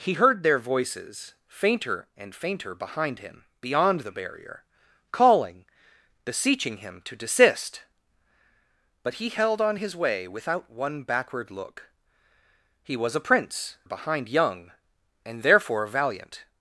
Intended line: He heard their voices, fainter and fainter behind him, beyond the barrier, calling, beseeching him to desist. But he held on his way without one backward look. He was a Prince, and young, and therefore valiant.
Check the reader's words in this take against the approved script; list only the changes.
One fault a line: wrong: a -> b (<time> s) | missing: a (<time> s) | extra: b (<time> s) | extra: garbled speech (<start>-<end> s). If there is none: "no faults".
wrong: and -> behind (13.8 s)